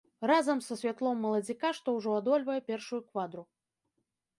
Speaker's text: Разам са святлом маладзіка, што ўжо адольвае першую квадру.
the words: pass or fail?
pass